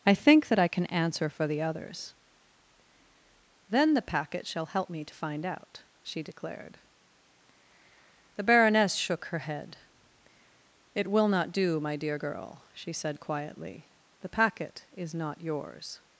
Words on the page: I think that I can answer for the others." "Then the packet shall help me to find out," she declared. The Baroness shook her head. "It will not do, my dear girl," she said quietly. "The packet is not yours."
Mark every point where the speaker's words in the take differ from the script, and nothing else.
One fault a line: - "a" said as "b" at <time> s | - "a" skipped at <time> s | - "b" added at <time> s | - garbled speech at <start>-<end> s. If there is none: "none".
none